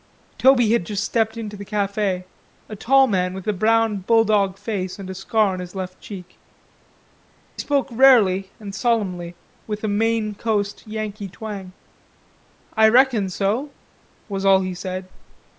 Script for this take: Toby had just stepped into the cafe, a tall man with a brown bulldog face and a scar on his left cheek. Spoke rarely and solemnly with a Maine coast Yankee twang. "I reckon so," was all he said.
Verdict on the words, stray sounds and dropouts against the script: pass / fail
pass